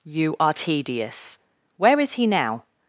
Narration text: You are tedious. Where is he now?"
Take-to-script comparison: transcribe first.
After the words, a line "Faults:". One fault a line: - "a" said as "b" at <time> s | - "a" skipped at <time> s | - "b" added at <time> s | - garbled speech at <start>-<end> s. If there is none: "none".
You are tedious. Where is he now?"
Faults:
none